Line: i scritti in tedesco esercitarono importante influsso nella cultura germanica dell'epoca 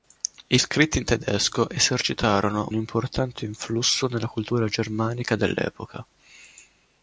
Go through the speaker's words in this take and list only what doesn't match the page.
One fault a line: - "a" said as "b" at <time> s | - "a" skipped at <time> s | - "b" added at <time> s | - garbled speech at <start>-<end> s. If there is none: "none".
none